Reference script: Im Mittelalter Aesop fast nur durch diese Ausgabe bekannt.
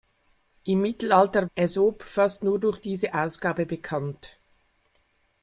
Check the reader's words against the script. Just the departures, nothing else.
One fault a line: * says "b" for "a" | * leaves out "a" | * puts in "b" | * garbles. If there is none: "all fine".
all fine